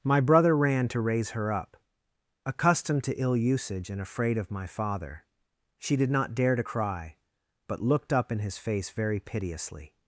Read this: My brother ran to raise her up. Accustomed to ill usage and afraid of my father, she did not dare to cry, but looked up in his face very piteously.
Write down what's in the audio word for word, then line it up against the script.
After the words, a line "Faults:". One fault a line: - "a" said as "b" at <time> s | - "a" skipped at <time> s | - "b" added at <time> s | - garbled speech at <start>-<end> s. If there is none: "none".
My brother ran to raise her up. Accustomed to ill usage and afraid of my father, she did not dare to cry, but looked up in his face very piteously.
Faults:
none